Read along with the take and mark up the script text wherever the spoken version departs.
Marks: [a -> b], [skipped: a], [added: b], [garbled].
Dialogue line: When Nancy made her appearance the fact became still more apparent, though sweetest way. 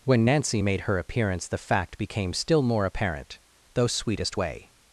When Nancy made her appearance the fact became still more apparent, though sweetest way.